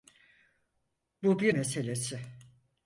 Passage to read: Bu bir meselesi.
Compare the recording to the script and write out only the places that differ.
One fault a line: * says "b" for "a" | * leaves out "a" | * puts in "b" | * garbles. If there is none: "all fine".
all fine